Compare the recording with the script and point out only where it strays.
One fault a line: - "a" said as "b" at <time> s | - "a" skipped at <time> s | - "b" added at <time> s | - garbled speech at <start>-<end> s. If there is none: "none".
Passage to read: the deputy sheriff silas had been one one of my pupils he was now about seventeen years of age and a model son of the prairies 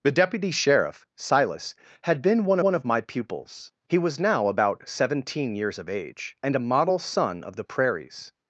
none